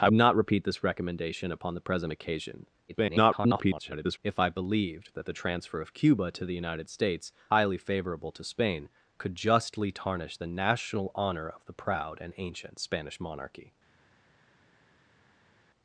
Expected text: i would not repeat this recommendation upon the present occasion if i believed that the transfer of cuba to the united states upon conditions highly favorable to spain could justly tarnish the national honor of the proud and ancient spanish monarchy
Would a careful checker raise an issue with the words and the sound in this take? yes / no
yes